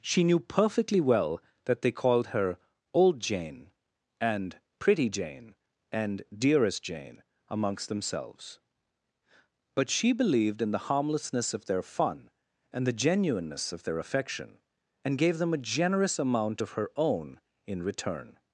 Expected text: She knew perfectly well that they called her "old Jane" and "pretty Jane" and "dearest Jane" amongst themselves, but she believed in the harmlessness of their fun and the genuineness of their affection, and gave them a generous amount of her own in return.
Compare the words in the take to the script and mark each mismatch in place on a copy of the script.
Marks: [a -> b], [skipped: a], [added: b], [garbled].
She knew perfectly well that they called her "old Jane" and "pretty Jane" and "dearest Jane" amongst themselves, but she believed in the harmlessness of their fun and the genuineness of their affection, and gave them a generous amount of her own in return.